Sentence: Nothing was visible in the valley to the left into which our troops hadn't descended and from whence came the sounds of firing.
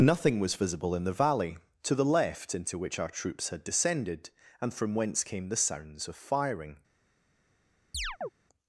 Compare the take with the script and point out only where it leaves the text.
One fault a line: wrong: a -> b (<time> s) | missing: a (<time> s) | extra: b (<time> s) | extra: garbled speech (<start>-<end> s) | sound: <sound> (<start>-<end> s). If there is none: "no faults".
wrong: hadn't -> had (3.5 s)
sound: chirp (7.9-8.3 s)